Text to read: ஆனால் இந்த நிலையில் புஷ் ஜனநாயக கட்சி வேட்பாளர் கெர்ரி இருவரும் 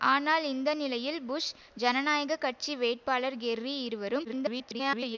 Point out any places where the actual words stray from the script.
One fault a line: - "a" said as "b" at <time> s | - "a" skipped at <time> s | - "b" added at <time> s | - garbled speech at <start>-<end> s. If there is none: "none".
- garbled speech at 4.2-5.2 s